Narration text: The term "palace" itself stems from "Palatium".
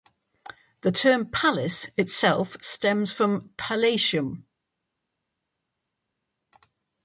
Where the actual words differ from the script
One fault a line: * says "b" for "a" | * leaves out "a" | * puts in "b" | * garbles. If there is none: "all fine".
all fine